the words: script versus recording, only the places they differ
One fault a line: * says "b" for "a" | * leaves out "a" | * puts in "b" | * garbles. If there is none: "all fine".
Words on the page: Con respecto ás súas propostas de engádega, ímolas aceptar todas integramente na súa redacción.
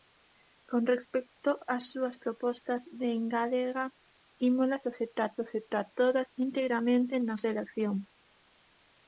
* puts in "aceptar"
* leaves out "súa"